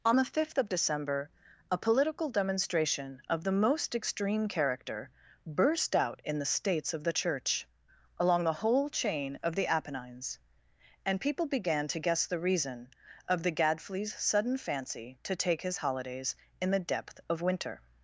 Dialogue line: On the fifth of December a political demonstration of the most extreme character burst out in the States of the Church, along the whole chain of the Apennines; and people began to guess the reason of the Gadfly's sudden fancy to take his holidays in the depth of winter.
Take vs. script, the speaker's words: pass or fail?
pass